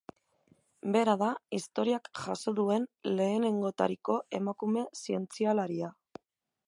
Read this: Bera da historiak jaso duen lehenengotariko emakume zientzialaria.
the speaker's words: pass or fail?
pass